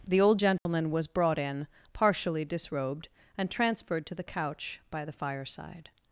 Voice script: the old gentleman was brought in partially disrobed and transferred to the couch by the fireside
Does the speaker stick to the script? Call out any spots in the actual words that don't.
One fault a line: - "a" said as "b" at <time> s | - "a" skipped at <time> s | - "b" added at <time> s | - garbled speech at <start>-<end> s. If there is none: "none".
none